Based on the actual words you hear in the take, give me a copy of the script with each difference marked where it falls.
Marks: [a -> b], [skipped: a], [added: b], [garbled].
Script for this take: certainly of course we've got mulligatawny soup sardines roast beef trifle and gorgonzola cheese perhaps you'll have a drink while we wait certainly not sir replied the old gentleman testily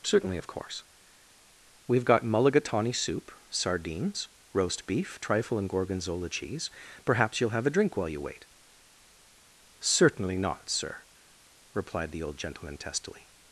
certainly of course we've got mulligatawny soup sardines roast beef trifle and gorgonzola cheese perhaps you'll have a drink while [we -> you] wait certainly not sir replied the old gentleman testily